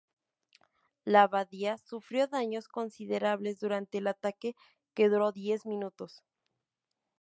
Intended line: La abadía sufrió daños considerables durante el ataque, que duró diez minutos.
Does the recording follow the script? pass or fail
pass